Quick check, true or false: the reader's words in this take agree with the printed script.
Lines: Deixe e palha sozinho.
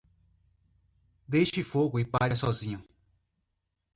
false